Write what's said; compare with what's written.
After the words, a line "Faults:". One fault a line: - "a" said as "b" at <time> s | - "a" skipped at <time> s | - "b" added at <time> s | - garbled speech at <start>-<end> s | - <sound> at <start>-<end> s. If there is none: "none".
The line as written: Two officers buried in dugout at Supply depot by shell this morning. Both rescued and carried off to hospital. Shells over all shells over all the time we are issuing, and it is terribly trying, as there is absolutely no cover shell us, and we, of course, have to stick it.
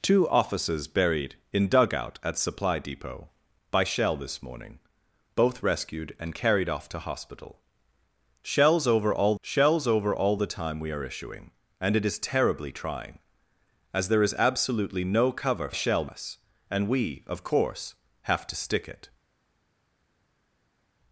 Two officers buried in dugout at Supply depot by shell this morning. Both rescued and carried off to hospital. Shells over all shells over all the time we are issuing, and it is terribly trying, as there is absolutely no cover shell us, and we, of course, have to stick it.
Faults:
none